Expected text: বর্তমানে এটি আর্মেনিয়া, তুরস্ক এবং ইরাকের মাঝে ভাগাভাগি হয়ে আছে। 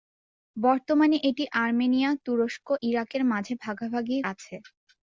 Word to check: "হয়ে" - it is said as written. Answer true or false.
false